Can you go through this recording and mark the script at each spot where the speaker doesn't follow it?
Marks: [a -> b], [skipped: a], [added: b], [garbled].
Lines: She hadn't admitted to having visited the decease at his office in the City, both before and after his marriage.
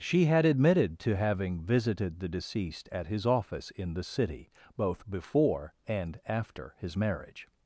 She [hadn't -> had] admitted to having visited the [decease -> deceased] at his office in the City, both before and after his marriage.